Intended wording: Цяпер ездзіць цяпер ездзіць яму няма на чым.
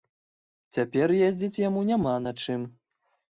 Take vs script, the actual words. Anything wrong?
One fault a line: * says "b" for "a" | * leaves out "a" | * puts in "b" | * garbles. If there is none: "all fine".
* leaves out "цяпер ездзіць"